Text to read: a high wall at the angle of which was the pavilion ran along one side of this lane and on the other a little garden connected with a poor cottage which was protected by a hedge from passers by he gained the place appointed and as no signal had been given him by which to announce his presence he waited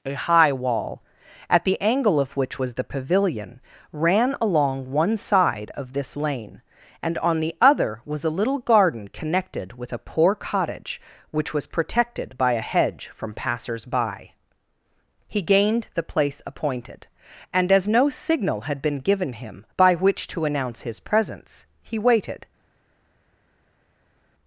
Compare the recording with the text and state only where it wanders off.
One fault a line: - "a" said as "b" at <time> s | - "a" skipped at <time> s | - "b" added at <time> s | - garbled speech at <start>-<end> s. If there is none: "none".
- "was" added at 8.0 s